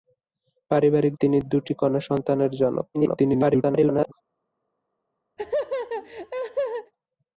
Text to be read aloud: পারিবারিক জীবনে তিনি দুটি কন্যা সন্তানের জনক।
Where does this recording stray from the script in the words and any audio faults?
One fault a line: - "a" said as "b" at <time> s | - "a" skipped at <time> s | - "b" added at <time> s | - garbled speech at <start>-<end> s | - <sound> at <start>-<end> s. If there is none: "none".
- "জীবনে" skipped at 1.1 s
- garbled speech at 2.9-4.1 s
- laugh at 5.4-6.9 s